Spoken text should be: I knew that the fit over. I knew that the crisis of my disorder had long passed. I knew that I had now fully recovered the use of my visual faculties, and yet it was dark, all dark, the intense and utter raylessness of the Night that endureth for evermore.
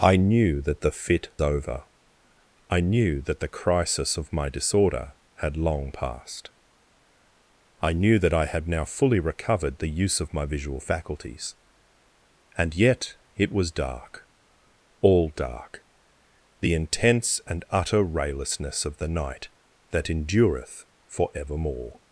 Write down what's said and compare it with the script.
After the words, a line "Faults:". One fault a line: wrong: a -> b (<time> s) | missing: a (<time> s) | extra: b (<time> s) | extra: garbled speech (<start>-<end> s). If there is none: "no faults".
I knew that the fit over. I knew that the crisis of my disorder had long passed. I knew that I had now fully recovered the use of my visual faculties, and yet it was dark, all dark, the intense and utter raylessness of the Night that endureth for evermore.
Faults:
no faults